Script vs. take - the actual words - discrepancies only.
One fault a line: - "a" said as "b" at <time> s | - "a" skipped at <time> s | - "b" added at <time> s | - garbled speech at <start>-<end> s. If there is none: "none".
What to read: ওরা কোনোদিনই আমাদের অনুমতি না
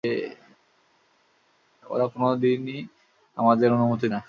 none